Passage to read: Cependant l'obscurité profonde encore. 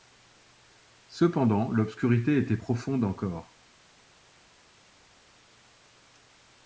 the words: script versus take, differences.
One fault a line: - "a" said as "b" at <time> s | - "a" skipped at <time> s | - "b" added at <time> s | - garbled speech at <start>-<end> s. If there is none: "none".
- "était" added at 2.4 s